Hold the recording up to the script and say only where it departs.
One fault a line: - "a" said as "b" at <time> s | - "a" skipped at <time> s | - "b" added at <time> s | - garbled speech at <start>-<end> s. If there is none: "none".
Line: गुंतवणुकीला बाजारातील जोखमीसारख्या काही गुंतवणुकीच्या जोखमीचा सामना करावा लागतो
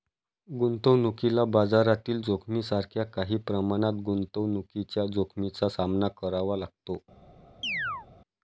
- "प्रमाणात" added at 3.4 s